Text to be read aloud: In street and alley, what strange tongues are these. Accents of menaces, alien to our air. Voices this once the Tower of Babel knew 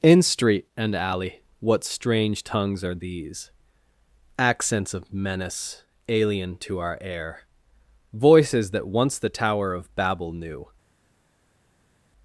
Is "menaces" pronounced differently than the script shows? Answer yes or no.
yes